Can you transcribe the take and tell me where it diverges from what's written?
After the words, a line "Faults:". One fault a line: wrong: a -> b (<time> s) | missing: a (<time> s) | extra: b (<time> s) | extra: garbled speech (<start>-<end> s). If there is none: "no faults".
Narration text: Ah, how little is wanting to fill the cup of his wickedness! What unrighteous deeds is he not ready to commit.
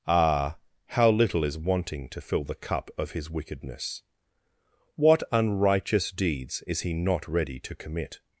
Ah, how little is wanting to fill the cup of his wickedness! What unrighteous deeds is he not ready to commit.
Faults:
no faults